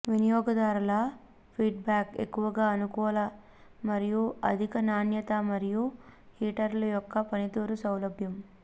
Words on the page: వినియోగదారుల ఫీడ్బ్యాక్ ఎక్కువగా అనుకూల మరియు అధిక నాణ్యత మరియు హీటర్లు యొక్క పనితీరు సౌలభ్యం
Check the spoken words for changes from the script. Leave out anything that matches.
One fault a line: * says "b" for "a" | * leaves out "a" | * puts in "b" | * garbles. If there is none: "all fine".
all fine